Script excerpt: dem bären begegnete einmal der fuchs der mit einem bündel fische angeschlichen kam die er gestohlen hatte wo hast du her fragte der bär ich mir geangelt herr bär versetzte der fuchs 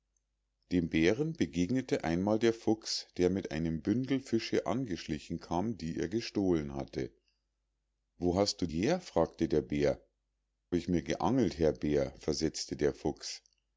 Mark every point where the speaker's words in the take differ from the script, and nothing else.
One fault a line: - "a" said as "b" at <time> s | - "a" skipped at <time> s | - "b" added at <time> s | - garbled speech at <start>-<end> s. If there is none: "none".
none